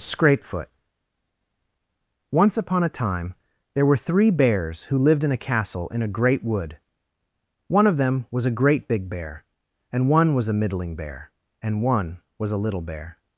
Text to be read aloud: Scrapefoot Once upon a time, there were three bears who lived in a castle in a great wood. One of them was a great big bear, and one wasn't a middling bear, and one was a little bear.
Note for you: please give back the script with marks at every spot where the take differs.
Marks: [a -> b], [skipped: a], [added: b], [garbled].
Scrapefoot Once upon a time, there were three bears who lived in a castle in a great wood. One of them was a great big bear, and one [wasn't -> was] a middling bear, and one was a little bear.